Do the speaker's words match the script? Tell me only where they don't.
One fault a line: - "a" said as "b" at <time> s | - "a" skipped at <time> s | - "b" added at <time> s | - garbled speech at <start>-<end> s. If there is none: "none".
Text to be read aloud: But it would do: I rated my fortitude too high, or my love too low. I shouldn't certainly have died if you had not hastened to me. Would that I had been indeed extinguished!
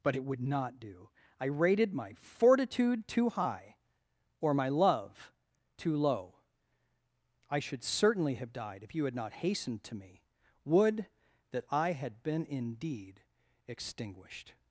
- "not" added at 0.4 s
- "shouldn't" said as "should" at 7.6 s